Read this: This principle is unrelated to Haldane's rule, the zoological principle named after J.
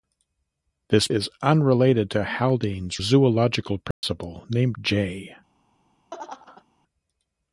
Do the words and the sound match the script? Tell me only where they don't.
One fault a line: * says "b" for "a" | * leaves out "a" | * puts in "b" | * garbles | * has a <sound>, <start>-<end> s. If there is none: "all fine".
* leaves out "principle"
* leaves out "rule the"
* has a dropout, 3.9-4.0 s
* leaves out "after"
* has a laugh, 6.1-6.6 s